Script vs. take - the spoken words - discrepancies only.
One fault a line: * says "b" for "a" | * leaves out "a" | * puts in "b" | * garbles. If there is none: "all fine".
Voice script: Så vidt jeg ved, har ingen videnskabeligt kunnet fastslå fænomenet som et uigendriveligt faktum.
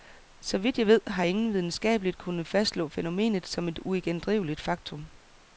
all fine